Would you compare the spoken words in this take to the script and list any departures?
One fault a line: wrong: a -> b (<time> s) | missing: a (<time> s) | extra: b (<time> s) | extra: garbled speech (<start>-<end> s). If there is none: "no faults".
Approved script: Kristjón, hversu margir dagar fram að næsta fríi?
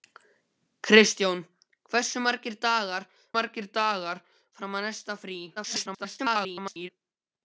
extra: margir dagar (3.4 s)
extra: garbled speech (5.6-6.9 s)